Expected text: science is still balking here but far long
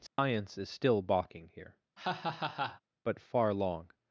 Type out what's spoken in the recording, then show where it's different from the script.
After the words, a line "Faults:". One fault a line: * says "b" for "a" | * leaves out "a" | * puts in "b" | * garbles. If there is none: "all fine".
science is still balking here but far long
Faults:
all fine